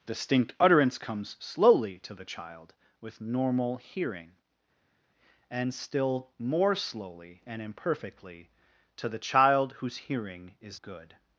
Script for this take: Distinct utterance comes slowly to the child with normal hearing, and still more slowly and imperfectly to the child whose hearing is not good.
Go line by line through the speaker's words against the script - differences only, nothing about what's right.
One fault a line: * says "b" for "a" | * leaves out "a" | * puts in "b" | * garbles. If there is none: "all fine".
* leaves out "not"